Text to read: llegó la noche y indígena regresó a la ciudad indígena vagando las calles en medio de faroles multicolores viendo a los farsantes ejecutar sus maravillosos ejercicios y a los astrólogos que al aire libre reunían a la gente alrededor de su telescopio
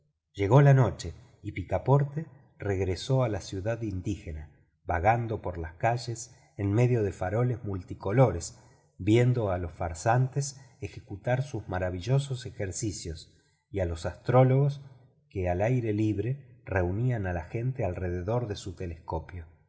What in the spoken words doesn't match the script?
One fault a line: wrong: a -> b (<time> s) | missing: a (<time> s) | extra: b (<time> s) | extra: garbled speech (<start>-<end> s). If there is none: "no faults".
wrong: indígena -> picaporte (1.5 s)
extra: por (5.4 s)